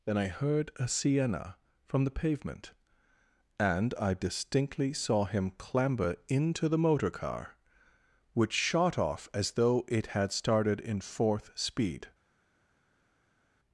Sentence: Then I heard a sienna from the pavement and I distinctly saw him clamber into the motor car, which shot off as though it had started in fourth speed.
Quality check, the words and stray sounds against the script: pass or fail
pass